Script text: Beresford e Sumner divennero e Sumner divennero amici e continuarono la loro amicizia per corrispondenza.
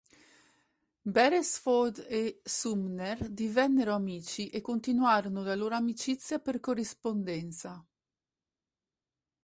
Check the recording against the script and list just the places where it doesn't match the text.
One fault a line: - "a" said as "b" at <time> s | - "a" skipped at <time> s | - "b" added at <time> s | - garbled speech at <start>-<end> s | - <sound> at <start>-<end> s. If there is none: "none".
- "e Sumner divennero" skipped at 3.9 s